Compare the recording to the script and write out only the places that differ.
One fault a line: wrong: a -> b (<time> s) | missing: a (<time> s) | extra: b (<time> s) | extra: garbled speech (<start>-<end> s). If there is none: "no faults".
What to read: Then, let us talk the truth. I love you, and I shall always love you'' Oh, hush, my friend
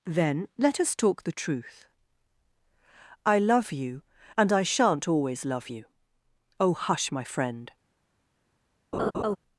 wrong: shall -> shan't (4.6 s)